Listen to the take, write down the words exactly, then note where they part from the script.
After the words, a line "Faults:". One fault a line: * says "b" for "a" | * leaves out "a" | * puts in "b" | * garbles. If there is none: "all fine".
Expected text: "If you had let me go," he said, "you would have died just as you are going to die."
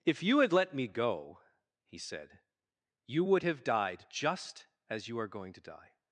"If you had let me go," he said, "you would have died just as you are going to die."
Faults:
all fine